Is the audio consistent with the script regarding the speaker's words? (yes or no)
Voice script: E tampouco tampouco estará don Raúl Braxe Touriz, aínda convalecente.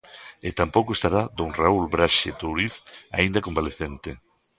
no